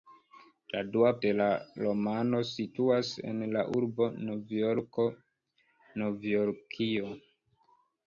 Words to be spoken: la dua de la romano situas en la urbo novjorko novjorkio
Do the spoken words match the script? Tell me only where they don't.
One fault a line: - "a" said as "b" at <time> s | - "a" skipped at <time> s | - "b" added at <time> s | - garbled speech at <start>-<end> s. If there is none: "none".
none